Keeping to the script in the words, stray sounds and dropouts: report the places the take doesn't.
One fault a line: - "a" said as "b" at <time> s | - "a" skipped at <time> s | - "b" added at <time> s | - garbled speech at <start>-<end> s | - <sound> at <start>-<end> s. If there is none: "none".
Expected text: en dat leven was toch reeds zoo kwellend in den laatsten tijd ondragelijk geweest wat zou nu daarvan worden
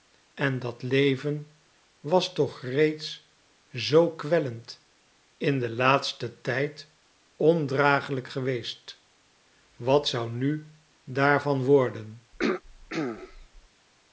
- throat clearing at 12.3-13.7 s